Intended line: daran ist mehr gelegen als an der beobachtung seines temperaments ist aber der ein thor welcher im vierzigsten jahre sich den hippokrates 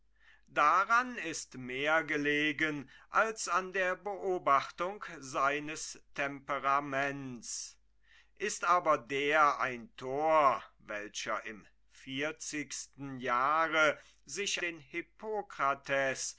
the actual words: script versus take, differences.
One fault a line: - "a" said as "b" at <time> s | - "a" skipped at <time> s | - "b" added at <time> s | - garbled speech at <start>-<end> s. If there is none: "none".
none